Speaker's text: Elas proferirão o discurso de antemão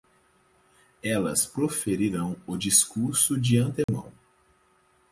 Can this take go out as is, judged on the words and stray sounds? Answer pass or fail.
fail